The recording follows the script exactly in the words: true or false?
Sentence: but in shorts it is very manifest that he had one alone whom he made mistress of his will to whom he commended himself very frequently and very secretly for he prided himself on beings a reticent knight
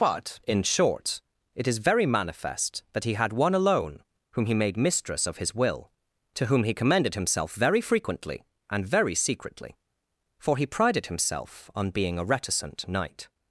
false